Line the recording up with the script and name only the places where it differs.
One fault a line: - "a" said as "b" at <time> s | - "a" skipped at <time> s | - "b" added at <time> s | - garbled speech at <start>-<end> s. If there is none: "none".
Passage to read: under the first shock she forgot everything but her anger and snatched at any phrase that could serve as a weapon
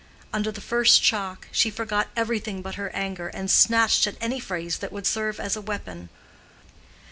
- "could" said as "would" at 4.9 s